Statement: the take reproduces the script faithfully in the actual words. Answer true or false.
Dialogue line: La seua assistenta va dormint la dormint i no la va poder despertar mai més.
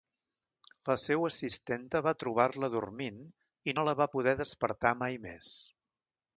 false